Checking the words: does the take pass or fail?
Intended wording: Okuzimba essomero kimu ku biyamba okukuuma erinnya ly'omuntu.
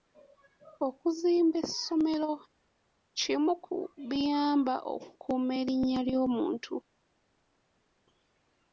pass